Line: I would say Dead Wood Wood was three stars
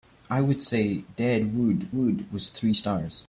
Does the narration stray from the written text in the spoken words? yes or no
no